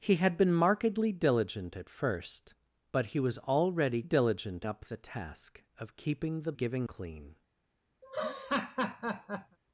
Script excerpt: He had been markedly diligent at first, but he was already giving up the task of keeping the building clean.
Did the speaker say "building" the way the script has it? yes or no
no